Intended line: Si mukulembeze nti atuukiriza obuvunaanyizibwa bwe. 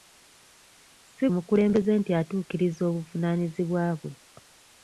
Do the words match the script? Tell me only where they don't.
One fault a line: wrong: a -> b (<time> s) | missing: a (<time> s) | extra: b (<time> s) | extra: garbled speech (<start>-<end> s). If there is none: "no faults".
no faults